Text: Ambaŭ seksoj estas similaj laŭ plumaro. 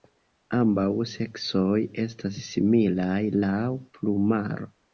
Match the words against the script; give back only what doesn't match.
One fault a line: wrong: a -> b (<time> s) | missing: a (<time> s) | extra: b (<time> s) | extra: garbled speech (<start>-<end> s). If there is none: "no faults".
no faults